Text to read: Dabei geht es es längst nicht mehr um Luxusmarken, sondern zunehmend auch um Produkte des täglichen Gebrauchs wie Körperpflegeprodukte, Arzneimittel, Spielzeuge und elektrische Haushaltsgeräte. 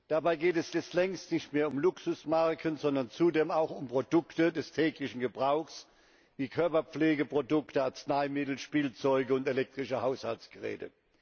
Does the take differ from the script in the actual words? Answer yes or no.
no